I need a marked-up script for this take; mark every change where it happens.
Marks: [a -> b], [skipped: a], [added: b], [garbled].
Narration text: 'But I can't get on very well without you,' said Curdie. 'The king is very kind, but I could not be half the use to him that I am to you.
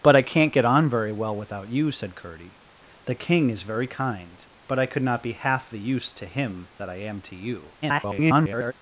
'But I can't get on very well without you,' said Curdie. 'The king is very kind, but I could not be half the use to him that I am to you. [garbled]